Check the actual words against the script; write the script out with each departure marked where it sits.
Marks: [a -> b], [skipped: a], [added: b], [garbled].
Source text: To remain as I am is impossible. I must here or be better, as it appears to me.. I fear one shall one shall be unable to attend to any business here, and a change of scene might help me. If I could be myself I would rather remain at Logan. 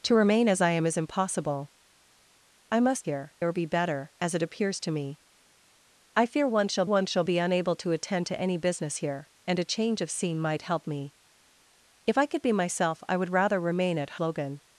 To remain as I am is impossible. I must here or be better, as it appears to me.. I fear one shall one shall be unable to attend to any business here, and a change of scene might help me. If I could be myself I would rather remain at Logan.